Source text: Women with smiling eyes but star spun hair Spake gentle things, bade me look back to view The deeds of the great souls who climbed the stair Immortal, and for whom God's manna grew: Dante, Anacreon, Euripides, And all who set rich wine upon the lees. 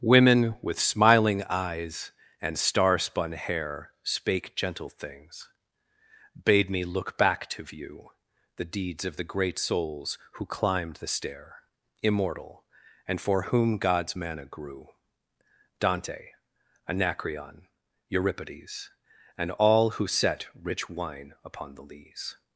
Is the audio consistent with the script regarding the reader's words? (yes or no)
no